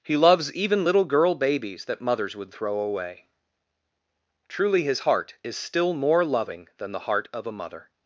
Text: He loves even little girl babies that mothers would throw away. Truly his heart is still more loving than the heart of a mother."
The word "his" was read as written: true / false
true